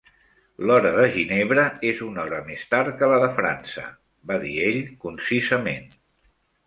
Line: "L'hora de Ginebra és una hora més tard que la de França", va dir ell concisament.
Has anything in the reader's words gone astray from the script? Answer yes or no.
no